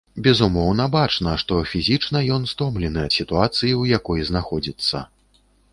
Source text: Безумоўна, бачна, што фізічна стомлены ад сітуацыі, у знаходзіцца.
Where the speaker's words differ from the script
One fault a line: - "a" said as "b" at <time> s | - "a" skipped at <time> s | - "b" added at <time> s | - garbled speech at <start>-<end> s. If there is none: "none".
- "ён" added at 2.4 s
- "якой" added at 4.0 s